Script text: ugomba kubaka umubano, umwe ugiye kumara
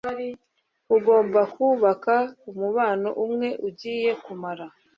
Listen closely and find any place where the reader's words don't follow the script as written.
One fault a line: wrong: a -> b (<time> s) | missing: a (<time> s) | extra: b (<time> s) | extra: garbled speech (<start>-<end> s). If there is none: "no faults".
no faults